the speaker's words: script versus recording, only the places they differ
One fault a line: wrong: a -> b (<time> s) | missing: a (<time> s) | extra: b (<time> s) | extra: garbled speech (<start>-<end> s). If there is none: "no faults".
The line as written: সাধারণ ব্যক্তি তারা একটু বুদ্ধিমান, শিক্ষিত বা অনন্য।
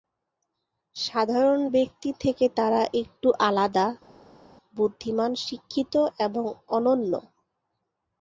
extra: থেকে (2.2 s)
extra: আলাদা (3.5 s)
wrong: বা -> এবং (6.2 s)